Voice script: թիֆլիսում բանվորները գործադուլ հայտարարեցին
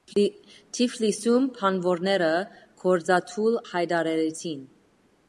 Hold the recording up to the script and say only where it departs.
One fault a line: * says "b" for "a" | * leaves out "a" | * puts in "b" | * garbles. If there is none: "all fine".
all fine